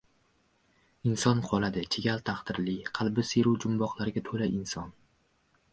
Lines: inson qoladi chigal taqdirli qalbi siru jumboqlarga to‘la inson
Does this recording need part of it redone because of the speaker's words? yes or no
no